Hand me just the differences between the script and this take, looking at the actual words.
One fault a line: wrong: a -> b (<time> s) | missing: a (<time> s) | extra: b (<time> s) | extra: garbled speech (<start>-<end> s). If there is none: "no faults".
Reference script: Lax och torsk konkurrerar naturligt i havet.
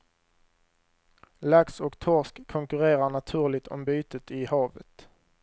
extra: om bytet (3.7 s)